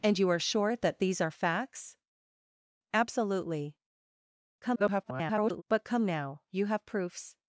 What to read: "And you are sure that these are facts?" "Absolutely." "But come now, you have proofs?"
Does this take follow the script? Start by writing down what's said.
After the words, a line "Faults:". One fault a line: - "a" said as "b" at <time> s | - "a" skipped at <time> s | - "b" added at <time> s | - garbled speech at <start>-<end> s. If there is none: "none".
"And you are sure that these are facts?" "Absolutely." [garbled] "But come now, you have proofs?"
Faults:
- garbled speech at 4.6-5.6 s